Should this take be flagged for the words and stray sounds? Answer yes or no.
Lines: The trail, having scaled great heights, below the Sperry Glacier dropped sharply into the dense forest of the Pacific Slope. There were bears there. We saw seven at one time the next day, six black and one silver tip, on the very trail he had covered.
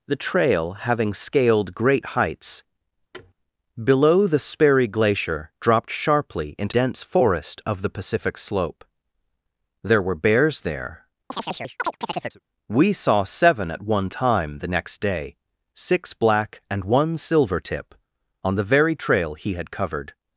yes